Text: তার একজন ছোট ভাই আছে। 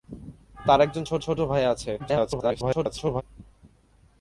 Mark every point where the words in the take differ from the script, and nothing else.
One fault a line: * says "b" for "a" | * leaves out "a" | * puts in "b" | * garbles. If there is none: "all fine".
* puts in "ছোট"
* garbles